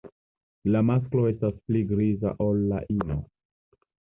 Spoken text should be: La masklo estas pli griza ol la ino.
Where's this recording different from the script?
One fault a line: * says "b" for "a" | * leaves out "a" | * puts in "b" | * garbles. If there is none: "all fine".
all fine